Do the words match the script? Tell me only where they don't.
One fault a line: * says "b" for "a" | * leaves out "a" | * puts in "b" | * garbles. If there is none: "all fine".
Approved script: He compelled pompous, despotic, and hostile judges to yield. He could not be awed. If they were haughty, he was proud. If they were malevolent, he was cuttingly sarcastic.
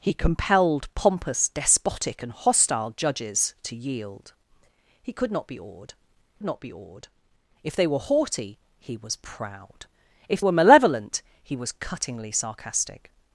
* puts in "not be awed"
* leaves out "they"